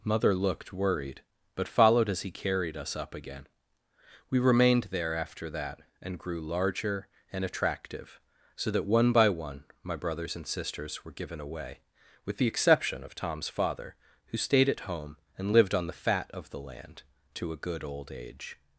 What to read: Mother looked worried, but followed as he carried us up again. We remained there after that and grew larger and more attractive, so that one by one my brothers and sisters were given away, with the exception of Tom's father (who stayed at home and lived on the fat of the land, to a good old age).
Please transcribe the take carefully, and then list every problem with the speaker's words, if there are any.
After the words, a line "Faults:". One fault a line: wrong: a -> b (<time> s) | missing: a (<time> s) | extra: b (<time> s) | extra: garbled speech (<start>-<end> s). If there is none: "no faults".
Mother looked worried, but followed as he carried us up again. We remained there after that and grew larger and attractive, so that one by one my brothers and sisters were given away, with the exception of Tom's father (who stayed at home and lived on the fat of the land, to a good old age).
Faults:
missing: more (7.5 s)